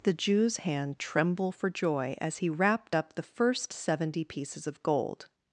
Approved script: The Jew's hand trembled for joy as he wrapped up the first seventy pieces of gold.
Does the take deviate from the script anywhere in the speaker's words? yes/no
yes